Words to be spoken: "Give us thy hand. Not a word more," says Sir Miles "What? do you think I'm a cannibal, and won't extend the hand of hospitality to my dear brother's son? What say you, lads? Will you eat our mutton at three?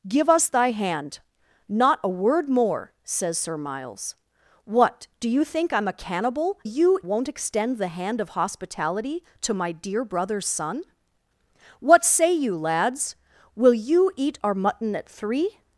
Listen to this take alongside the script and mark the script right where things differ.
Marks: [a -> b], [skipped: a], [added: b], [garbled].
"Give us thy hand. Not a word more," says Sir Miles "What? do you think I'm a cannibal, [and -> you] won't extend the hand of hospitality to my dear brother's son? What say you, lads? Will you eat our mutton at three?